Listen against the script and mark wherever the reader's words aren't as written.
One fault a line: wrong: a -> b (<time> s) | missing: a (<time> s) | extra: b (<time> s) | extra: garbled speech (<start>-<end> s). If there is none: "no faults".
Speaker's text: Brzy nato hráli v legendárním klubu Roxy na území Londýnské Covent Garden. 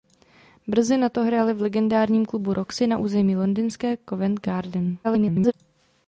extra: garbled speech (5.0-5.5 s)